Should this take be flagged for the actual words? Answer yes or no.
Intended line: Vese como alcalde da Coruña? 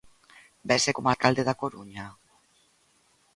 no